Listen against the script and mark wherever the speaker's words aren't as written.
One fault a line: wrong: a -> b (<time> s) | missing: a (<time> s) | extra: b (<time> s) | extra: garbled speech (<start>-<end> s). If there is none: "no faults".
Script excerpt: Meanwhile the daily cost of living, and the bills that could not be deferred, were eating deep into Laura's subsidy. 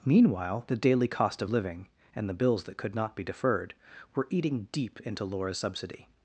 no faults